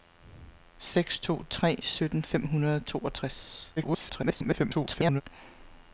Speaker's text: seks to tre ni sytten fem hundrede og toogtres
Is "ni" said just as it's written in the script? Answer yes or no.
no